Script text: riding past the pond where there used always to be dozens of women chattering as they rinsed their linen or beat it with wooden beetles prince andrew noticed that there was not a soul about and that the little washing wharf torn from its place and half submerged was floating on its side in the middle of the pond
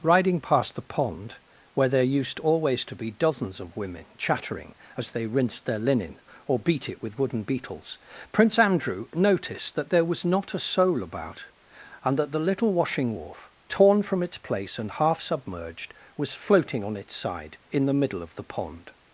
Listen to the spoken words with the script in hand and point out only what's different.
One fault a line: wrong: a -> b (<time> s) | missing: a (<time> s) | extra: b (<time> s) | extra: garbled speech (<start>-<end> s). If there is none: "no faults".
no faults